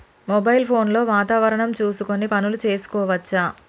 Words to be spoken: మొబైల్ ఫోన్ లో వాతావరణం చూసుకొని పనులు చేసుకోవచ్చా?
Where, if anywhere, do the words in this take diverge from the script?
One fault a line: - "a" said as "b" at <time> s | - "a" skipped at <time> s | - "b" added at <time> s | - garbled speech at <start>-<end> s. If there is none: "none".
none